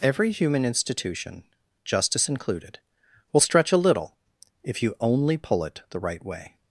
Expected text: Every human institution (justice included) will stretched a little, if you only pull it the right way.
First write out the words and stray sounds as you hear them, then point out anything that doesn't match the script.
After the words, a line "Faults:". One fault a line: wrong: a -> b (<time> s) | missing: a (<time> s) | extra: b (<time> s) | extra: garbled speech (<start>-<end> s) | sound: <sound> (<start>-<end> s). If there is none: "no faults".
Every human institution (justice included) will stretch a little, if you only pull it the right way.
Faults:
wrong: stretched -> stretch (3.4 s)